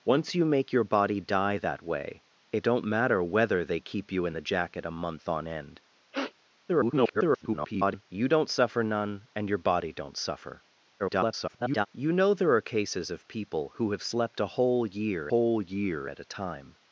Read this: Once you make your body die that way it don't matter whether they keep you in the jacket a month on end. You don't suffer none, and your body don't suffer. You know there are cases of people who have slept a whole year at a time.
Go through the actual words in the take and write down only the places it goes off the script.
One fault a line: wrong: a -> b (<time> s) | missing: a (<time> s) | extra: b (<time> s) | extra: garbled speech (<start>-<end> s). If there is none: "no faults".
extra: garbled speech (6.7-8.0 s)
extra: garbled speech (11.0-11.9 s)
extra: whole year (15.3 s)